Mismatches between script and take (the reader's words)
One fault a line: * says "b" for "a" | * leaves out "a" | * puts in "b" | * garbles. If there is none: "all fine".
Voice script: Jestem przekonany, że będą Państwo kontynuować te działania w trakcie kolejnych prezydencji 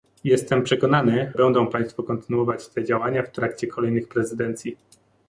* leaves out "że"